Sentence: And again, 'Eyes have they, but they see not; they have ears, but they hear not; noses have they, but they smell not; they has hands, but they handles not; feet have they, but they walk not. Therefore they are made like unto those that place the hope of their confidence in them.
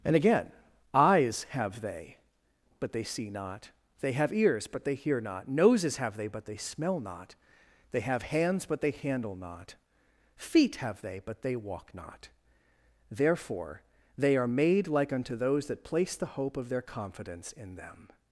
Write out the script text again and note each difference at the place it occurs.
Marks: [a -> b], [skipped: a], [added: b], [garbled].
And again, 'Eyes have they, but they see not; they have ears, but they hear not; noses have they, but they smell not; they [has -> have] hands, but they [handles -> handle] not; feet have they, but they walk not. Therefore they are made like unto those that place the hope of their confidence in them.